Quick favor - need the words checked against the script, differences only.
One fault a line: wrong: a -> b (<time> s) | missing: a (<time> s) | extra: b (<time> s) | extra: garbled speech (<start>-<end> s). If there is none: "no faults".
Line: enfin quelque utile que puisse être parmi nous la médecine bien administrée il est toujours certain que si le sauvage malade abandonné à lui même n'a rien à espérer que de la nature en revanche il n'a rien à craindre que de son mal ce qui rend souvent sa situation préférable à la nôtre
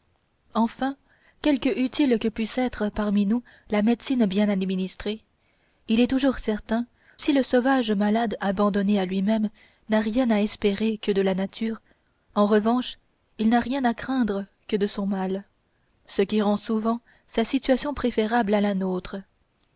missing: que (6.9 s)